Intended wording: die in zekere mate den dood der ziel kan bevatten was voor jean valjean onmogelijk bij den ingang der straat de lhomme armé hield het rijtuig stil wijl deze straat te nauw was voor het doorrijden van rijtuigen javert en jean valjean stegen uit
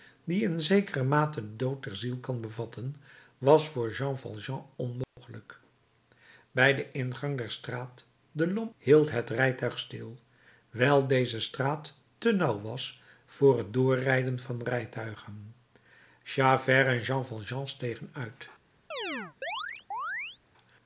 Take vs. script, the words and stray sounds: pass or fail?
fail